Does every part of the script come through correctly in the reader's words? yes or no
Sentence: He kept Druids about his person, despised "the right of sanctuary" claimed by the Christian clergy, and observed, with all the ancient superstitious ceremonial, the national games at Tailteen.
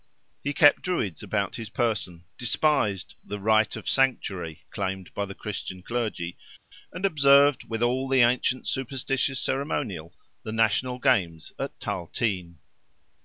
yes